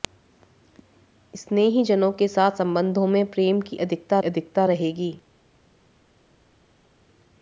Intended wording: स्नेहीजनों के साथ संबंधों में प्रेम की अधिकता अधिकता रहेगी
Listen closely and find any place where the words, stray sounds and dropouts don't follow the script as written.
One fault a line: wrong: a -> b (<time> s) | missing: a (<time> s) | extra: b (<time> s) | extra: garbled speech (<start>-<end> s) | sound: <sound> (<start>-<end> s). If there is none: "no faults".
no faults